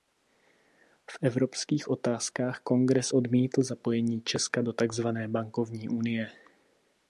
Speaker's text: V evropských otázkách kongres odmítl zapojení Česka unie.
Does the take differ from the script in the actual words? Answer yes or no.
yes